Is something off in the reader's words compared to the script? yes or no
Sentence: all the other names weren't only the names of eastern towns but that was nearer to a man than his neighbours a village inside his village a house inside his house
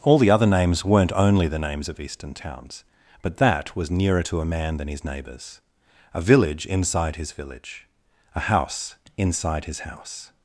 no